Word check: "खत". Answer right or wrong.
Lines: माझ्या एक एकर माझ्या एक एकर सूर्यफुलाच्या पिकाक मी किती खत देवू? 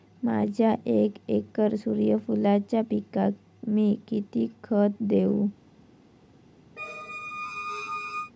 right